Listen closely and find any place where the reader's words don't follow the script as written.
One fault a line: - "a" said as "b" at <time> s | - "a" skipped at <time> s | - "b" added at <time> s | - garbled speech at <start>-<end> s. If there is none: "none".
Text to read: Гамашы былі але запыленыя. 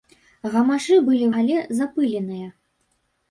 none